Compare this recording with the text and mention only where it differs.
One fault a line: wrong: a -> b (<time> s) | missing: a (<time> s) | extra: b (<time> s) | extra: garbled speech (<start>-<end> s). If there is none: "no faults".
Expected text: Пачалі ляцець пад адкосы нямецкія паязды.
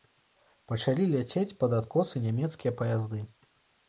no faults